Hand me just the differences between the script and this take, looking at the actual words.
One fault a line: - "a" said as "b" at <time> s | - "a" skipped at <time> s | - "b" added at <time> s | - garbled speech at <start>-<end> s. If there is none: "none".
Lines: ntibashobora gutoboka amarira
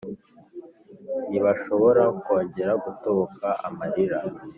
- "kongera" added at 2.2 s